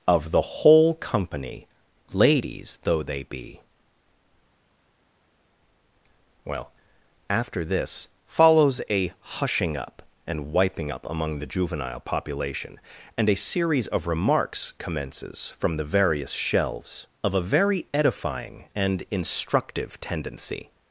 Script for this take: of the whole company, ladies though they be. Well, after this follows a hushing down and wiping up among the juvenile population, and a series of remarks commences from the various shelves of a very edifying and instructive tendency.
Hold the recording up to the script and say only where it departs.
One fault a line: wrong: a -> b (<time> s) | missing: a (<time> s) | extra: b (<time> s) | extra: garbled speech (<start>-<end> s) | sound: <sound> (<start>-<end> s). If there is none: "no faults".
wrong: down -> up (9.8 s)